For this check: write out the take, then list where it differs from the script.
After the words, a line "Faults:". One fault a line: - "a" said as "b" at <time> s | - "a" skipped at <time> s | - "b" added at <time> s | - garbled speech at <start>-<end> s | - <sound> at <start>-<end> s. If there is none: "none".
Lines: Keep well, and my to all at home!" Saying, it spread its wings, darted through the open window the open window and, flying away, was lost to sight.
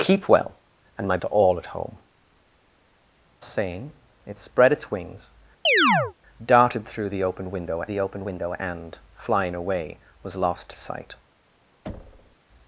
Keep well, and my to all at home!" Saying, it spread its wings, darted through the open window the open window and, flying away, was lost to sight.
Faults:
- chirp at 5.6-6.1 s
- thud at 11.9-12.4 s